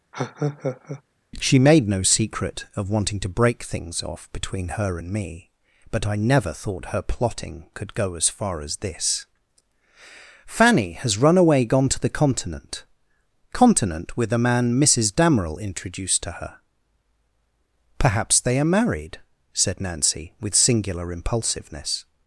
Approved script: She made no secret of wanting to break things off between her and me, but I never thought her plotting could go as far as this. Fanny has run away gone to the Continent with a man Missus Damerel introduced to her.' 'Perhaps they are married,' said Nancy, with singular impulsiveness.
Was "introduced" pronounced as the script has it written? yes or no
yes